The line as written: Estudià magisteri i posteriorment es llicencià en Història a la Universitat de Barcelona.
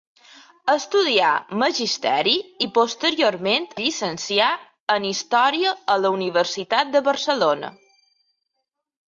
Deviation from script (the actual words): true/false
true